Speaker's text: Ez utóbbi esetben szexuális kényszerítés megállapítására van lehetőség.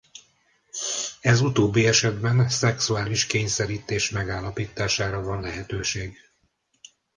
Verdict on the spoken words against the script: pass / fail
pass